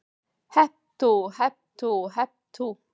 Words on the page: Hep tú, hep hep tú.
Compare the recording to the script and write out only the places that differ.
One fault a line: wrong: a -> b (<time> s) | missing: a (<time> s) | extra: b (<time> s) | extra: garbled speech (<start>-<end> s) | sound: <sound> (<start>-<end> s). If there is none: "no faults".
extra: tú (1.8 s)